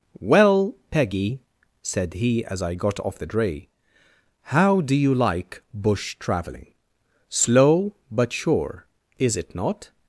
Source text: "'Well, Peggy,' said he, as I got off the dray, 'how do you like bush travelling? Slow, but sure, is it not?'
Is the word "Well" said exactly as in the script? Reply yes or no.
yes